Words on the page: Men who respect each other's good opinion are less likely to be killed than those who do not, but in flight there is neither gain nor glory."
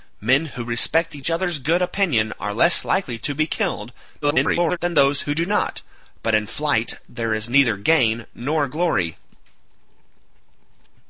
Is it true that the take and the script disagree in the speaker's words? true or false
true